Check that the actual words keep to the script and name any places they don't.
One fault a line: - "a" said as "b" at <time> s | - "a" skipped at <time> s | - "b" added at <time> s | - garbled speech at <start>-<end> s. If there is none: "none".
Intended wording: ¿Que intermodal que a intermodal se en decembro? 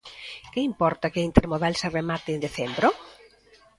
- "intermodal" said as "importa" at 0.7 s
- "remate" added at 2.0 s